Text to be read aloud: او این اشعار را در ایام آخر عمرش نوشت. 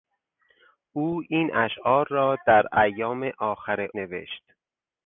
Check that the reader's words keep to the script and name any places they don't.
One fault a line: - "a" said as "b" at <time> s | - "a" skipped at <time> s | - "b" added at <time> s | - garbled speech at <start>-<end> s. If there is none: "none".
- "عمرش" skipped at 3.9 s